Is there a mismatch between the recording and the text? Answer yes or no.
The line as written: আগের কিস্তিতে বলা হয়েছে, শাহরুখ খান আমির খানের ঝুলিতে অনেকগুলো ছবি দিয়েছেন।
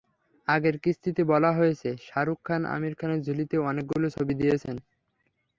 no